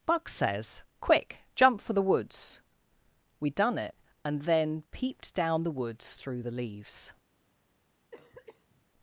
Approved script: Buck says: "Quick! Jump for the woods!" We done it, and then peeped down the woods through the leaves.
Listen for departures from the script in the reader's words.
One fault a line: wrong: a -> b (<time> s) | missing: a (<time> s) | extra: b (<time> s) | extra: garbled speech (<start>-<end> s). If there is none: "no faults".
no faults